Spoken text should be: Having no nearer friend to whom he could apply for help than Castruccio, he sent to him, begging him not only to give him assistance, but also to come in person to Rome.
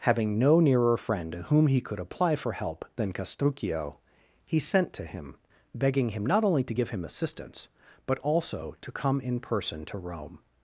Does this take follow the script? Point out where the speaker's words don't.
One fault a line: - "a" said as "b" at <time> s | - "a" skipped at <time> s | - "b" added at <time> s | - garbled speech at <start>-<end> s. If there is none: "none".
none